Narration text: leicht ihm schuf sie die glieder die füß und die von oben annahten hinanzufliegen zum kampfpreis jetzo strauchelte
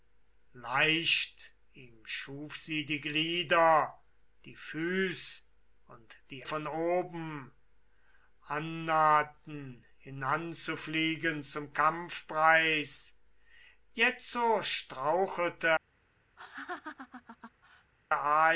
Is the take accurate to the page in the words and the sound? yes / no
no